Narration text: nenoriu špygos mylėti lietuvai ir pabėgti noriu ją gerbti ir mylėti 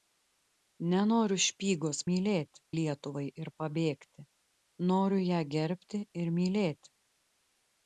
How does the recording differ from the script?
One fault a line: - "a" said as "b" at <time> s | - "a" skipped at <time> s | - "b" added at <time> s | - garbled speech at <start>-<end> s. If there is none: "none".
none